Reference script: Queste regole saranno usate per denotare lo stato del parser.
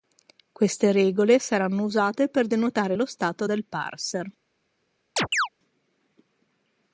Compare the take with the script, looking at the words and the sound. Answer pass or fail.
fail